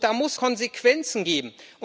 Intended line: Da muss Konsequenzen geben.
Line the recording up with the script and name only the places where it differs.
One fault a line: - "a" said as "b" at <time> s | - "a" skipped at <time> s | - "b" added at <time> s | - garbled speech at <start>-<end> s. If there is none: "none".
none